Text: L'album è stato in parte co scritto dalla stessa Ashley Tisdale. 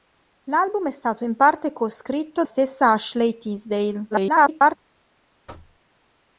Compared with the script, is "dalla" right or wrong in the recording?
wrong